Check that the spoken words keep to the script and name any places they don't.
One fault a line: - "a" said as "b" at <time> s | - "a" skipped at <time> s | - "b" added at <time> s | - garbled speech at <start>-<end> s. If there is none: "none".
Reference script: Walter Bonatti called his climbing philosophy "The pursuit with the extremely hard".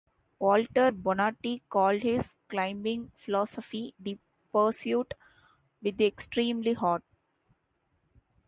none